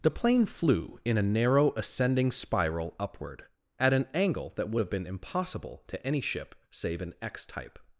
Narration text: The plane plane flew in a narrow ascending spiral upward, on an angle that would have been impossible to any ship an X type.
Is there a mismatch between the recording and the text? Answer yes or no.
yes